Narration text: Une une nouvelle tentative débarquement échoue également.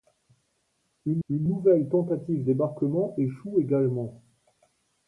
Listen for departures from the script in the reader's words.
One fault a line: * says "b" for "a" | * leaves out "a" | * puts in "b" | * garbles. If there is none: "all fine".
all fine